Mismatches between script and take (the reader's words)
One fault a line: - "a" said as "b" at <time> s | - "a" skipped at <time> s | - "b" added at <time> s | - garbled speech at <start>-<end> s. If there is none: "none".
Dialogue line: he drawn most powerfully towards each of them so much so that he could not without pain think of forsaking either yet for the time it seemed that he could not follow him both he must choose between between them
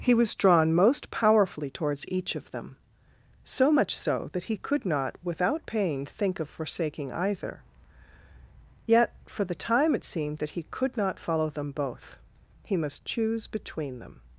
- "was" added at 0.1 s
- "him" said as "them" at 11.5 s
- "between" skipped at 14.0 s